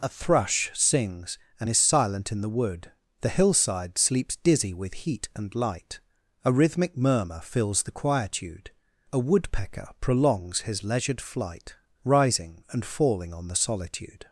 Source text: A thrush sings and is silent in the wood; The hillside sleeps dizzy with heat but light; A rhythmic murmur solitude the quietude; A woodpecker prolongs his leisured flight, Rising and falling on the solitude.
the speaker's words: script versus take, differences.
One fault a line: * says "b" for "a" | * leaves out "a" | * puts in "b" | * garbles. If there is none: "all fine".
* says "and" for "but"
* says "fills" for "solitude"